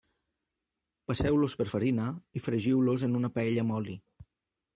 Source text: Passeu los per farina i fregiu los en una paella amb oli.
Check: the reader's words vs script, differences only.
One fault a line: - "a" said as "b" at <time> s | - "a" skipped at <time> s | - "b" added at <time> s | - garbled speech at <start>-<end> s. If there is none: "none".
none